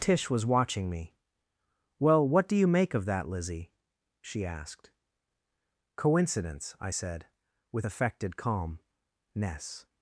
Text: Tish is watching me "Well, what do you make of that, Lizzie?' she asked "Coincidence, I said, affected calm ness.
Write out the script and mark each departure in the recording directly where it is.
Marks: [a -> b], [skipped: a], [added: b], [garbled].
Tish [is -> was] watching me "Well, what do you make of that, Lizzie?' she asked "Coincidence, I said, [added: with] affected calm ness.